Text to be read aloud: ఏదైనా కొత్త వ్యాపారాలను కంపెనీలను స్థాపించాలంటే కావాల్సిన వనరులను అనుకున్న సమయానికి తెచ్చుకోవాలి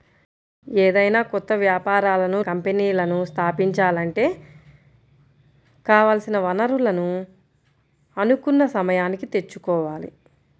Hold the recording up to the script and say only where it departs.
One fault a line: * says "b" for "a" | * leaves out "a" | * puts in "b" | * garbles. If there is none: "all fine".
all fine